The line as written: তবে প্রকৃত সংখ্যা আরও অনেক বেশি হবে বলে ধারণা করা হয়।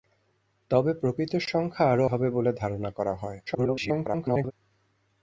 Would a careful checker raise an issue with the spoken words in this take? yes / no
yes